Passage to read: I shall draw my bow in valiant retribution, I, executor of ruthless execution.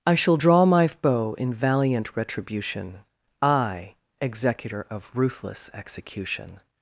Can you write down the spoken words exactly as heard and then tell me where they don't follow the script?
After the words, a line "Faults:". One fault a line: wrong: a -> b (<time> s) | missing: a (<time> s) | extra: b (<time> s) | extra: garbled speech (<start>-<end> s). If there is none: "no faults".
I shall draw my bow in valiant retribution, I, executor of ruthless execution.
Faults:
no faults